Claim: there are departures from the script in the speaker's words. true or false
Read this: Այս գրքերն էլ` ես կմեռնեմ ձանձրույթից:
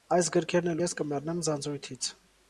false